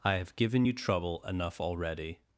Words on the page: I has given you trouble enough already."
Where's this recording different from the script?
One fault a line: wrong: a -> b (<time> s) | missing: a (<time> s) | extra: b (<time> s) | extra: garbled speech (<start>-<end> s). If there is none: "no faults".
wrong: has -> have (0.1 s)